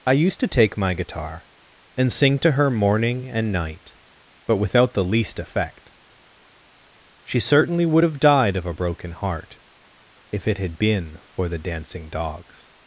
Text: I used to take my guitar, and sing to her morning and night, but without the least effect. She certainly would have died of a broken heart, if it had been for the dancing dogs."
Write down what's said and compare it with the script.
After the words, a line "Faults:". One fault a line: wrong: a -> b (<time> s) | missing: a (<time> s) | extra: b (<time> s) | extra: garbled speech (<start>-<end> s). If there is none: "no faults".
I used to take my guitar, and sing to her morning and night, but without the least effect. She certainly would have died of a broken heart, if it had been for the dancing dogs."
Faults:
no faults